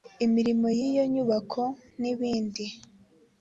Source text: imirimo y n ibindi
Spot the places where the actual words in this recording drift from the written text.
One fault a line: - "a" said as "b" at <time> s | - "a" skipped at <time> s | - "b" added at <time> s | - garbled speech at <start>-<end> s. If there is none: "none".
- "iyo nyubako" added at 0.9 s